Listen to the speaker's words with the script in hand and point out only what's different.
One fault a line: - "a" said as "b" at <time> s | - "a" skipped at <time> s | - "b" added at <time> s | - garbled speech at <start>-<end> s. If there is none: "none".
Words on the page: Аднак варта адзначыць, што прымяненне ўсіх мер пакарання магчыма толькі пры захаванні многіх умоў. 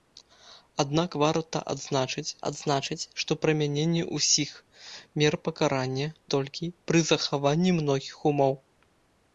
- "адзначыць" added at 2.5 s
- "магчыма" skipped at 6.1 s